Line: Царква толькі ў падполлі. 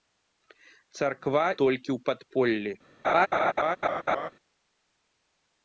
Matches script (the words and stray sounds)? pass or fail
fail